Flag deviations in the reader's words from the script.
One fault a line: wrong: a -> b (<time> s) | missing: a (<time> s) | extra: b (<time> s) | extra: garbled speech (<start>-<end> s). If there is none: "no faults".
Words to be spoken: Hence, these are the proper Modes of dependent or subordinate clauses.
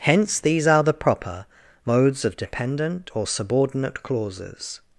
no faults